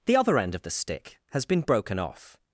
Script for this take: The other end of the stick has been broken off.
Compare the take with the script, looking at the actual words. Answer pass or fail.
pass